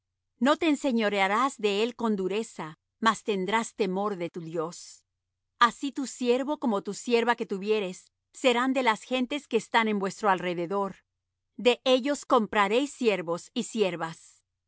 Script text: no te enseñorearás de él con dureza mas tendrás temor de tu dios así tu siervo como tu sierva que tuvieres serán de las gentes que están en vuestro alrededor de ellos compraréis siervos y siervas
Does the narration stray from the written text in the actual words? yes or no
no